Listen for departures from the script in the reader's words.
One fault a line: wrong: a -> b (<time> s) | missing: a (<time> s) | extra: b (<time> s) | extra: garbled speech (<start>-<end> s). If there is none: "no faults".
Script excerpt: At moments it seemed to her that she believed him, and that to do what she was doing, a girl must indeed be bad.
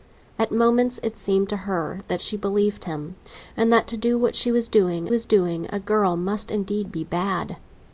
extra: was doing (5.1 s)